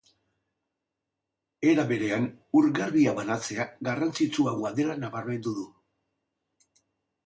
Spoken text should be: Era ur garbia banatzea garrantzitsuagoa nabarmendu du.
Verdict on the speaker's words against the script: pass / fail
fail